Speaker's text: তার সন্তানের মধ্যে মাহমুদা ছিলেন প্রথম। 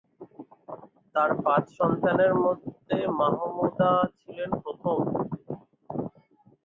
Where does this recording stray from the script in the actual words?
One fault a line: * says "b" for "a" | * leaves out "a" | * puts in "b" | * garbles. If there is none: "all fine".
* puts in "পাঁচ"